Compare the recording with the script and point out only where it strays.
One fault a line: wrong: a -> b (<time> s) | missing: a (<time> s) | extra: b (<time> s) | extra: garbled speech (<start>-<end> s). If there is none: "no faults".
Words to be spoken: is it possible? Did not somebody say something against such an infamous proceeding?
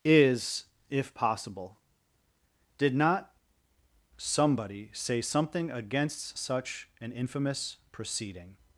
wrong: it -> if (0.9 s)